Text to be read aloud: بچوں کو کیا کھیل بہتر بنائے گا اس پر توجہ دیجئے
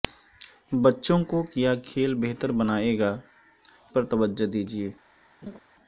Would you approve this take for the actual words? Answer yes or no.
no